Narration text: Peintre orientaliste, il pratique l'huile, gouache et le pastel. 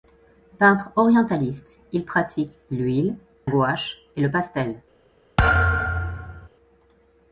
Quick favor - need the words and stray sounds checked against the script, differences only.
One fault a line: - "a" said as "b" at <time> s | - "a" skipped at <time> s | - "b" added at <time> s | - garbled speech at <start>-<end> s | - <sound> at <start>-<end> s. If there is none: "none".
- thud at 5.4-6.5 s